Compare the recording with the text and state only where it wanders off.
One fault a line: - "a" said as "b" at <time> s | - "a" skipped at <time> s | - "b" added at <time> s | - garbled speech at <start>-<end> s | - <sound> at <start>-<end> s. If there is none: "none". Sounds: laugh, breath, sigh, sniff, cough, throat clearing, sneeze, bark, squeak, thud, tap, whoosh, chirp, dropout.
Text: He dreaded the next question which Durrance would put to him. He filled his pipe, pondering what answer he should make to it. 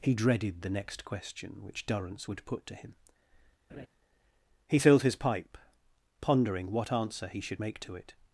- laugh at 3.7-3.9 s